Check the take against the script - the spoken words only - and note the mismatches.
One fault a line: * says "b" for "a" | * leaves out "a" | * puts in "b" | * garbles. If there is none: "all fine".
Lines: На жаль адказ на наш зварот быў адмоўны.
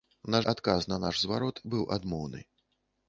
* leaves out "жаль"